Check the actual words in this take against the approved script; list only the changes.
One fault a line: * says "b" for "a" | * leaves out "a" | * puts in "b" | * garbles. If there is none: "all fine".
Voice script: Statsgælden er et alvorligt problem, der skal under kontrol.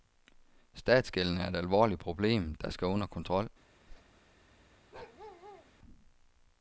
all fine